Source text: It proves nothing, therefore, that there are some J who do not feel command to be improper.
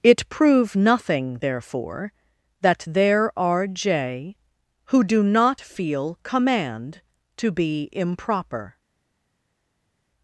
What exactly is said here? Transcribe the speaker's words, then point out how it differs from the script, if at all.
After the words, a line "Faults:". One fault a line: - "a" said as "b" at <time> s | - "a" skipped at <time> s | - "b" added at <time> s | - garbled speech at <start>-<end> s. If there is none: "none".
It prove nothing, therefore, that there are J who do not feel command to be improper.
Faults:
- "proves" said as "prove" at 0.3 s
- "some" skipped at 3.7 s